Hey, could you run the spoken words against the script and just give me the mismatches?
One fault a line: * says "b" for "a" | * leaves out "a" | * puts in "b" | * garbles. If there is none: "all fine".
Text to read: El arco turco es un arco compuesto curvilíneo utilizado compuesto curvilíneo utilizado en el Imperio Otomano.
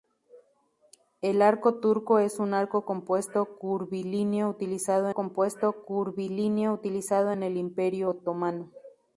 all fine